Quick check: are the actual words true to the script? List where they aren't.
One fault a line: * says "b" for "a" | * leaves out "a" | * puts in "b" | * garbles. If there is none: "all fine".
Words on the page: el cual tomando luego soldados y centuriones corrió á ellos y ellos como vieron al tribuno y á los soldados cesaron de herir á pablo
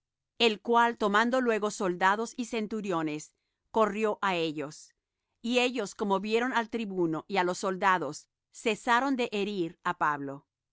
all fine